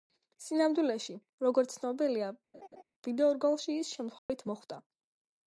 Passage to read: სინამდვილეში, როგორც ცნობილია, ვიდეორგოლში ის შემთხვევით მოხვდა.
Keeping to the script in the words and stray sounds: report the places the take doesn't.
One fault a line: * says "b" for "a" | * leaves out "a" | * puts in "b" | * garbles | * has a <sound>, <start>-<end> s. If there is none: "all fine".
* has a laugh, 2.5-2.8 s
* has a dropout, 4.2-4.3 s